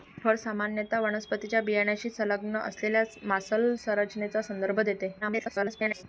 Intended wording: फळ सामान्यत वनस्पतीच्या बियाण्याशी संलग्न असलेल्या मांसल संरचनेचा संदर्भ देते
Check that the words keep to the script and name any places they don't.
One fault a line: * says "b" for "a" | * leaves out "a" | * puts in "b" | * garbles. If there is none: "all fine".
* garbles